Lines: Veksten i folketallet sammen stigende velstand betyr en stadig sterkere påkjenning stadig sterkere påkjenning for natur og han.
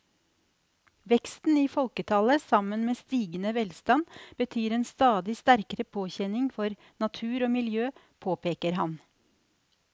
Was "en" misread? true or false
false